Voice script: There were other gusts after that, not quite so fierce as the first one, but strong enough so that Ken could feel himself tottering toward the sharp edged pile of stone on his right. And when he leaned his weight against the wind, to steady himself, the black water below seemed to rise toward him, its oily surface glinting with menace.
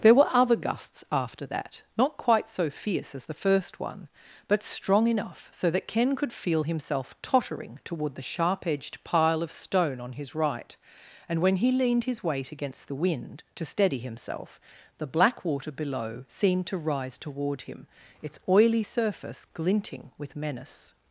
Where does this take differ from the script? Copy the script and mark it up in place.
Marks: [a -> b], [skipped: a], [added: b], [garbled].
There were other gusts after that, not quite so fierce as the first one, but strong enough so that Ken could feel himself tottering toward the sharp edged pile of stone on his right. And when he leaned his weight against the wind, to steady himself, the black water below seemed to rise toward him, its oily surface glinting with menace.